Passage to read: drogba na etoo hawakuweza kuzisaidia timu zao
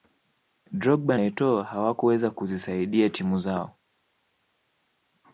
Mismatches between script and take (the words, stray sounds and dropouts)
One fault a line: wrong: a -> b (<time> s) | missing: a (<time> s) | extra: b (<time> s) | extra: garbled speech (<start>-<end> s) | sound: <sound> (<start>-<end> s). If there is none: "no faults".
missing: na (1.2 s)